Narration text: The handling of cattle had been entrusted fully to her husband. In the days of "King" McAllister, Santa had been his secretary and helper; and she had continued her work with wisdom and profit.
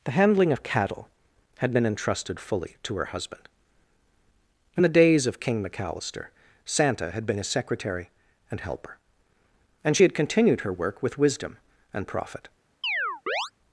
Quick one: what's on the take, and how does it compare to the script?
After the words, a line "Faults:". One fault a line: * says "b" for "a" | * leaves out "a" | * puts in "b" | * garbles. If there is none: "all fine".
The handling of cattle had been entrusted fully to her husband. In the days of "King" McAllister, Santa had been his secretary and helper; and she had continued her work with wisdom and profit.
Faults:
all fine